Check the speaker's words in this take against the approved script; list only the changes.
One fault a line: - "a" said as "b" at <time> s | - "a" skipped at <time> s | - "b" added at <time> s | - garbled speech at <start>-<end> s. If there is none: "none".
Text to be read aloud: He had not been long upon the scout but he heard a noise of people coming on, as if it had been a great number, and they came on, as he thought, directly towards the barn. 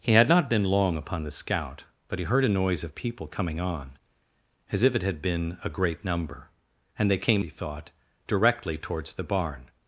- "on as" skipped at 7.5 s